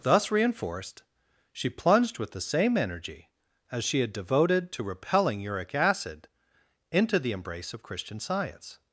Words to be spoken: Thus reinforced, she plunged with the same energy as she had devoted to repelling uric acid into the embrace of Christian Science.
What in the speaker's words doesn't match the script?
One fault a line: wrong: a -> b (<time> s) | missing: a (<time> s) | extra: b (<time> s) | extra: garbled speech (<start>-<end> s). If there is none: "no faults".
no faults